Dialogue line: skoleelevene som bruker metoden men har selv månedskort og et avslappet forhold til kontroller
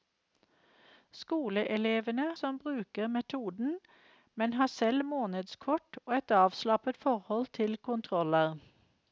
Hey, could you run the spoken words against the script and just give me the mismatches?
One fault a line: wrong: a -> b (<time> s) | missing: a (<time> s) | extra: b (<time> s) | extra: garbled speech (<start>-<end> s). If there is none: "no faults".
no faults